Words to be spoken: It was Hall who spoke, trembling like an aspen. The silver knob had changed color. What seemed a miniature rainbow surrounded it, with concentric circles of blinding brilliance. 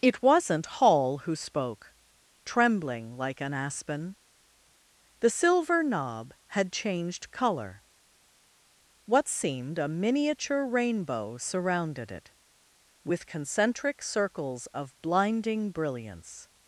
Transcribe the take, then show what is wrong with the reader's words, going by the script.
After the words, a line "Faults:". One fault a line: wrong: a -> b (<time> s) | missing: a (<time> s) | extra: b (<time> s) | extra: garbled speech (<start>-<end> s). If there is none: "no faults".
It wasn't Hall who spoke, trembling like an aspen. The silver knob had changed color. What seemed a miniature rainbow surrounded it, with concentric circles of blinding brilliance.
Faults:
wrong: was -> wasn't (0.2 s)